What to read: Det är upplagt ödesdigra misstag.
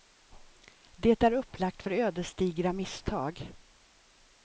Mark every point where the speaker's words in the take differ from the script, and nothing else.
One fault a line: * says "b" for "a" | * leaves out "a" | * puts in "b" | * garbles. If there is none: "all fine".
* puts in "för"